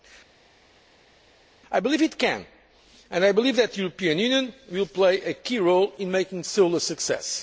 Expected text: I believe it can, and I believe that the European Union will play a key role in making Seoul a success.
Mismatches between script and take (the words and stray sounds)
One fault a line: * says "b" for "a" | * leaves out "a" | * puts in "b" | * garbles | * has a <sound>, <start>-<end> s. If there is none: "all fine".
all fine